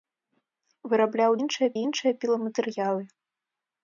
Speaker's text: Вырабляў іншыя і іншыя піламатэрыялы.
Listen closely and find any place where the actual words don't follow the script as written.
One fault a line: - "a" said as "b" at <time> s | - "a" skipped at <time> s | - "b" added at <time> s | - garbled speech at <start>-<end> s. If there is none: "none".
none